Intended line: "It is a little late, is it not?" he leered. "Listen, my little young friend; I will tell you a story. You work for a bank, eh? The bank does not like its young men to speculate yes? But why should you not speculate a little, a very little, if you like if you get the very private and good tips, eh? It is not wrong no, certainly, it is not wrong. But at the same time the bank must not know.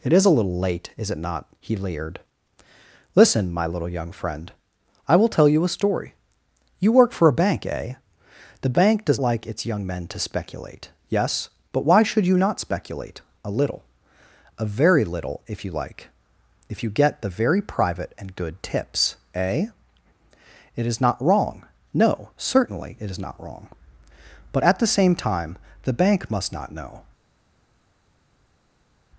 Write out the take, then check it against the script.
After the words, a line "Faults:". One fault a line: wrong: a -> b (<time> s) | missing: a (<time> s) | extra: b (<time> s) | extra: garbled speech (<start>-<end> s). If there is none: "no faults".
"It is a little late, is it not?" he leered. "Listen, my little young friend; I will tell you a story. You work for a bank, eh? The bank does like its young men to speculate yes? But why should you not speculate a little, a very little, if you like if you get the very private and good tips, eh? It is not wrong no, certainly, it is not wrong. But at the same time the bank must not know.
Faults:
missing: not (9.2 s)